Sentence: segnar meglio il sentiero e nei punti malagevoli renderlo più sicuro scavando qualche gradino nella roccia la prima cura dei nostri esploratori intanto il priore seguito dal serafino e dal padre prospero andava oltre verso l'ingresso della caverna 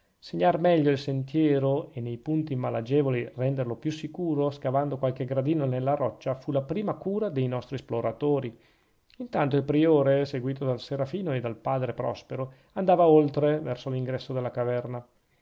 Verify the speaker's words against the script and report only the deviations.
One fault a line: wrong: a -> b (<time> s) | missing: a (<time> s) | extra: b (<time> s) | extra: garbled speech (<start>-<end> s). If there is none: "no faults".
extra: fu (6.3 s)